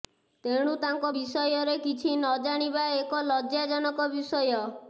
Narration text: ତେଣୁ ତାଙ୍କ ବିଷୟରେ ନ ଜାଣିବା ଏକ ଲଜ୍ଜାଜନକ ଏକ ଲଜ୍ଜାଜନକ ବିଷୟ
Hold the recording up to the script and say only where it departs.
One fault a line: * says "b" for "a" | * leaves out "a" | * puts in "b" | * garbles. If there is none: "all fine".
* puts in "କିଛି"
* leaves out "ଏକ ଲଜ୍ଜାଜନକ"